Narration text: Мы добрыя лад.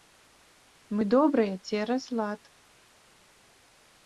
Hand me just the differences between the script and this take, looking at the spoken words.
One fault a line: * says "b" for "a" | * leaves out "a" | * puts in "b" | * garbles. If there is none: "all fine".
* puts in "цераз"